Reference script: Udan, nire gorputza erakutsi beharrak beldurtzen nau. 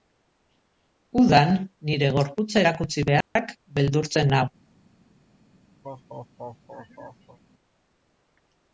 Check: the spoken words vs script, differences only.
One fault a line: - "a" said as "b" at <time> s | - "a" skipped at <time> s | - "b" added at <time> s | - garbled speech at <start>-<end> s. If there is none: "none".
none